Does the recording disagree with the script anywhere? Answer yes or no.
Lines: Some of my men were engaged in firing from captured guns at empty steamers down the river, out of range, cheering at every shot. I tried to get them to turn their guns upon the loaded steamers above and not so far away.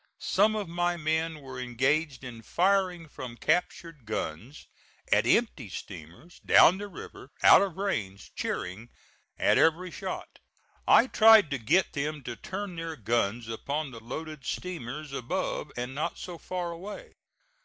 no